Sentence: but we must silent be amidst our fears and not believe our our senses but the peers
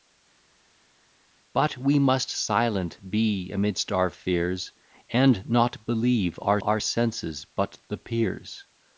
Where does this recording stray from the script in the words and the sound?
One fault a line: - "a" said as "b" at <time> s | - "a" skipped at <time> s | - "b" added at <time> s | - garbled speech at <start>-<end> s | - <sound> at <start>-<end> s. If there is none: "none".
none